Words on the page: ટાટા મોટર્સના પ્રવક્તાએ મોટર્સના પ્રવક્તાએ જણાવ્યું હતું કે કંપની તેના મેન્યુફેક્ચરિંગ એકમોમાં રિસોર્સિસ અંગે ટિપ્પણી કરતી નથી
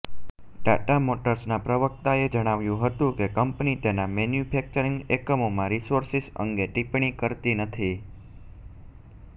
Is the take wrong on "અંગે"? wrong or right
right